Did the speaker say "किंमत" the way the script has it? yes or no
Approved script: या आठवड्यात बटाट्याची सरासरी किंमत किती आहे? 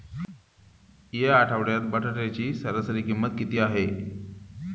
yes